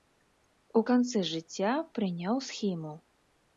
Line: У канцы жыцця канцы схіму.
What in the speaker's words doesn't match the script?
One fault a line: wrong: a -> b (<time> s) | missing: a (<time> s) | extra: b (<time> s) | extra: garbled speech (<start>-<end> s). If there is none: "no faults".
wrong: канцы -> прыняў (2.0 s)